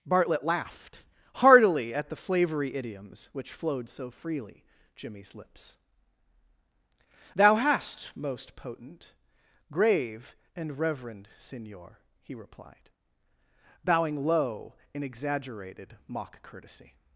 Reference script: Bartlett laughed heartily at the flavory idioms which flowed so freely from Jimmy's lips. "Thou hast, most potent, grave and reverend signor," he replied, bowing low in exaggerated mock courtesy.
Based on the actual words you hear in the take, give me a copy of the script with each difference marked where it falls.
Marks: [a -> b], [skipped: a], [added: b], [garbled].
Bartlett laughed heartily at the flavory idioms which flowed so freely [skipped: from] Jimmy's lips. "Thou hast, most potent, grave and reverend signor," he replied, bowing low in exaggerated mock courtesy.